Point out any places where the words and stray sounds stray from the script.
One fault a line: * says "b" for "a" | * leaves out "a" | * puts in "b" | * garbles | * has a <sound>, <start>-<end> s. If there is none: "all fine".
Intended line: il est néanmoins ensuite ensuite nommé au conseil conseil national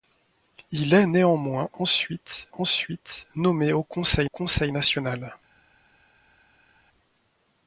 all fine